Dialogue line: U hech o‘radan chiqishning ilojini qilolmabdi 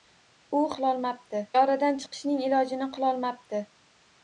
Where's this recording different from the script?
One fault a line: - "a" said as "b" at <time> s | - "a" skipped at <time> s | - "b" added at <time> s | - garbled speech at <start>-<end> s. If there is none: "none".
- "hech" said as "qilolmabdi" at 0.8 s